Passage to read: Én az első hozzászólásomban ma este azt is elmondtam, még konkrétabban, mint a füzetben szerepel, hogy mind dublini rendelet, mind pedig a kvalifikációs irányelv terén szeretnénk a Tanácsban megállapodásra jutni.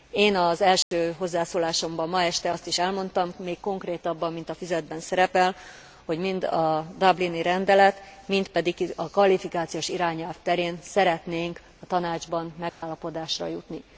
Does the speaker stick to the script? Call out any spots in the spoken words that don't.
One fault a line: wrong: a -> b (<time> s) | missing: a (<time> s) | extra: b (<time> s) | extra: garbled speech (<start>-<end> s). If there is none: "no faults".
extra: a (6.4 s)